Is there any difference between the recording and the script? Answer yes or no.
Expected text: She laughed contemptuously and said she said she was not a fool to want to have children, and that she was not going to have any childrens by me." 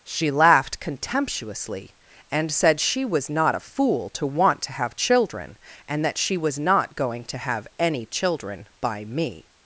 yes